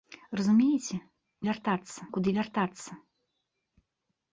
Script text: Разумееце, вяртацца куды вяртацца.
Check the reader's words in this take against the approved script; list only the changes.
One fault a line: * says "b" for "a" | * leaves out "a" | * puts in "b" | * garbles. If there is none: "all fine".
all fine